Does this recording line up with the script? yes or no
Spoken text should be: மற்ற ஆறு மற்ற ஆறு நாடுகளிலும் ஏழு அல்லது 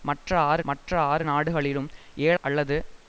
yes